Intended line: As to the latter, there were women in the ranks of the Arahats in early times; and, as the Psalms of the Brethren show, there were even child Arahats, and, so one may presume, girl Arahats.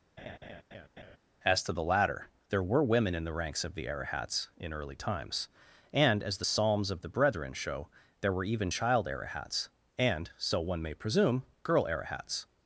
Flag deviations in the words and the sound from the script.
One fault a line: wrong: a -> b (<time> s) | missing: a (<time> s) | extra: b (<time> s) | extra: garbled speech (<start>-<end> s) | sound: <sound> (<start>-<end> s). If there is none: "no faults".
sound: laugh (0.2-1.2 s)